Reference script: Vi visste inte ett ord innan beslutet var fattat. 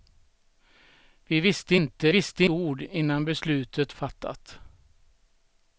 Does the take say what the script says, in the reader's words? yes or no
no